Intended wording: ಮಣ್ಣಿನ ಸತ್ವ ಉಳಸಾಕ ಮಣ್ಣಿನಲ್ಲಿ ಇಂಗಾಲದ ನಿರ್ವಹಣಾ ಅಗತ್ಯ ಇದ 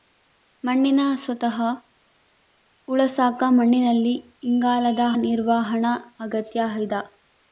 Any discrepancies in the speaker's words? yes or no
no